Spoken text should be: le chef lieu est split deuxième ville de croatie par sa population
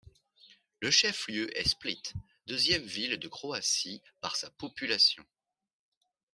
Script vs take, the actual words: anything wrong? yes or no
no